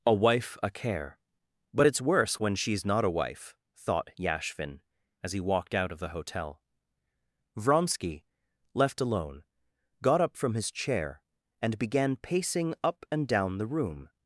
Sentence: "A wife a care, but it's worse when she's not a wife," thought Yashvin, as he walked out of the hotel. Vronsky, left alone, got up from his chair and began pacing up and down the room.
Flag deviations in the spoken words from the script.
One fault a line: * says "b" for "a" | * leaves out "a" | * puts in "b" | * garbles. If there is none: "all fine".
all fine